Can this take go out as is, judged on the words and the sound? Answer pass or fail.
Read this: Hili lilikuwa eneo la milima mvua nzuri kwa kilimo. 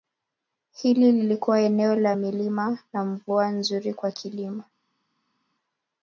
fail